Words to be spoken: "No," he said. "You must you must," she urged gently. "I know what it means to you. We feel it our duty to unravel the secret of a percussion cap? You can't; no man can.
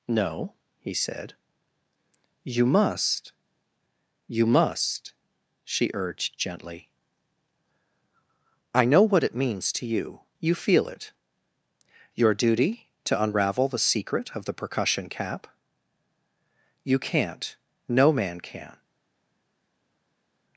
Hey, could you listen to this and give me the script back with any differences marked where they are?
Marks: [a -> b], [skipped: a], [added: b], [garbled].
"No," he said. "You must you must," she urged gently. "I know what it means to you. [We -> You] feel it [our -> your] duty to unravel the secret of [a -> the] percussion cap? You can't; no man can.